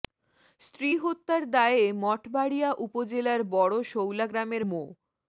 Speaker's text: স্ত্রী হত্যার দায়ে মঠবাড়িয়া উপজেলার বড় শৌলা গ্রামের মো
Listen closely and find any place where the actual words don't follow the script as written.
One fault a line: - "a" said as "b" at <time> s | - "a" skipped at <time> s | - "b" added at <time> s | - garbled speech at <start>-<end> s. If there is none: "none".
none